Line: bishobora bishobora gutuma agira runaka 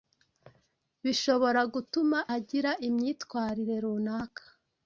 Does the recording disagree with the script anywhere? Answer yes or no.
yes